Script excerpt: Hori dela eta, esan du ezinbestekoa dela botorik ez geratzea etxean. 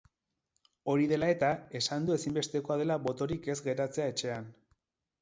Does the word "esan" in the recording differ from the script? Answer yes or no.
no